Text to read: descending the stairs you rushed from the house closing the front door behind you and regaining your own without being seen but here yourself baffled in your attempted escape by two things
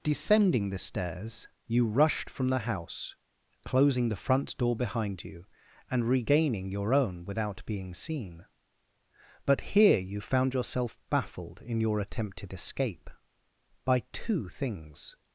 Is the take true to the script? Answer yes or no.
no